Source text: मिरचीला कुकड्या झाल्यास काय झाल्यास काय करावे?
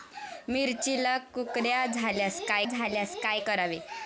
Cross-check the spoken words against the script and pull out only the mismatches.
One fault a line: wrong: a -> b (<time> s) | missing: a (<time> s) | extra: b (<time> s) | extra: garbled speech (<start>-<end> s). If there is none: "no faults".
no faults